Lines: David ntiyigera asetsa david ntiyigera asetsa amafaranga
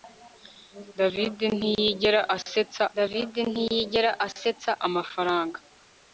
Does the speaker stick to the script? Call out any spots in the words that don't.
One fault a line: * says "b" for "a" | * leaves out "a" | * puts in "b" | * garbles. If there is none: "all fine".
all fine